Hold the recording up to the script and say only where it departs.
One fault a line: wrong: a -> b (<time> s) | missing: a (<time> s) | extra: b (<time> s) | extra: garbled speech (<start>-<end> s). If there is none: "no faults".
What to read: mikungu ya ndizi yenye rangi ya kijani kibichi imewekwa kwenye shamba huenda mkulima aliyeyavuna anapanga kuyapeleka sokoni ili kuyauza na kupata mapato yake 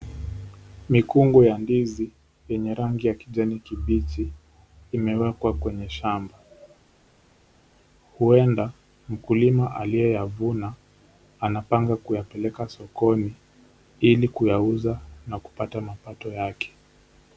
no faults